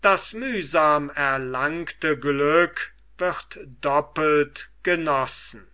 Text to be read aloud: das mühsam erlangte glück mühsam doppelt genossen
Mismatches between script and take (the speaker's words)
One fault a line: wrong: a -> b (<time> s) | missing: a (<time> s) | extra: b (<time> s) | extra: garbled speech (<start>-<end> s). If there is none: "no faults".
wrong: mühsam -> wird (3.2 s)